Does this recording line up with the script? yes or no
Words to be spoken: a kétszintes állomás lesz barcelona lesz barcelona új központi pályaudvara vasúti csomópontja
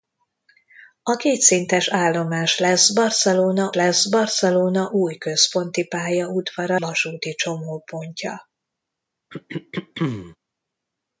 yes